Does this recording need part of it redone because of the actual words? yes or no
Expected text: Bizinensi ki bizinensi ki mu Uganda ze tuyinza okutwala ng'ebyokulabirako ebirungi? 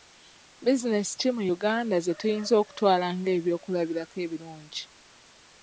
yes